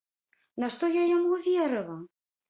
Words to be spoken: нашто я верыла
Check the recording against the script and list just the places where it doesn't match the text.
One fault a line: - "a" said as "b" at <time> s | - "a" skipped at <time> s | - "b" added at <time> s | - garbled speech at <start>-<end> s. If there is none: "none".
- "яму" added at 1.2 s